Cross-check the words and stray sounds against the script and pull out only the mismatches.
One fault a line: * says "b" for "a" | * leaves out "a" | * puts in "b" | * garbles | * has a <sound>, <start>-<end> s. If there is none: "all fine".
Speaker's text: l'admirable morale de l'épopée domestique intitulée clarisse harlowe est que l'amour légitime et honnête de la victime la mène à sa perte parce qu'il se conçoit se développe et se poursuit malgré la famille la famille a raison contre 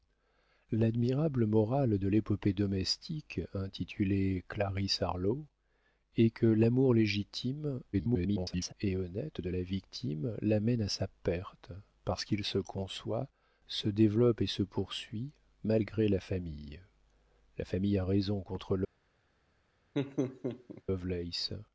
* garbles
* has a laugh, 19.9-20.8 s